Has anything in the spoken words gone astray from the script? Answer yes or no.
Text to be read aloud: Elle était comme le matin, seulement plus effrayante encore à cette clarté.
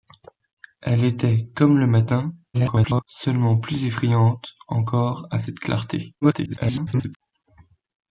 yes